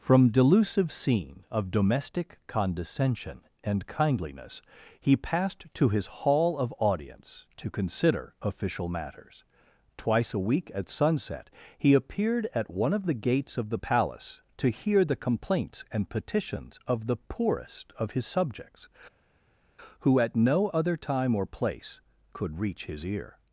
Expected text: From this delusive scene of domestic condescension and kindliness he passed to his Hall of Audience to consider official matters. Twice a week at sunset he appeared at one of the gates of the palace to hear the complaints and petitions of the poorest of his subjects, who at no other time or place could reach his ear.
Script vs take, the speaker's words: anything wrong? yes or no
yes